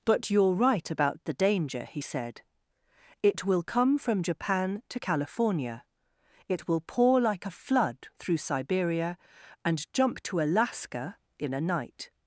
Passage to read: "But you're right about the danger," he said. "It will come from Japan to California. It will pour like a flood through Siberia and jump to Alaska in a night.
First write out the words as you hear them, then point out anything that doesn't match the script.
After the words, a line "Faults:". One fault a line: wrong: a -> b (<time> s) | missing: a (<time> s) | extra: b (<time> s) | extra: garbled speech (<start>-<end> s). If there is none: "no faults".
"But you're right about the danger," he said. "It will come from Japan to California. It will pour like a flood through Siberia and jump to Alaska in a night.
Faults:
no faults